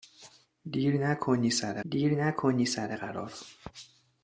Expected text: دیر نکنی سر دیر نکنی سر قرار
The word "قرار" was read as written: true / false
true